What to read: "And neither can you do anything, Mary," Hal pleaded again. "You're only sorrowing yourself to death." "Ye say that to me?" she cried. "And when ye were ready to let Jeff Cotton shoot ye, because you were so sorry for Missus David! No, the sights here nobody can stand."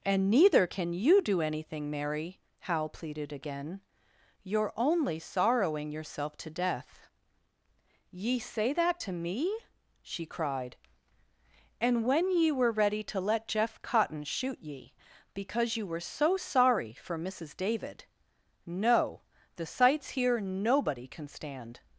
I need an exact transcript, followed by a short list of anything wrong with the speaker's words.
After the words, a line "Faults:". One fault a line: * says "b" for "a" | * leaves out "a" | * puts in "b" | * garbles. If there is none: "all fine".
"And neither can you do anything, Mary," Hal pleaded again. "You're only sorrowing yourself to death." "Ye say that to me?" she cried. "And when ye were ready to let Jeff Cotton shoot ye, because you were so sorry for Missus David! No, the sights here nobody can stand."
Faults:
all fine